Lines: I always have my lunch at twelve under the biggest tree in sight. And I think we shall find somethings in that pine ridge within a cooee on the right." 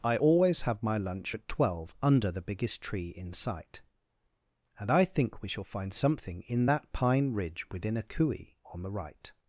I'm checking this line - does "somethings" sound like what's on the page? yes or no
no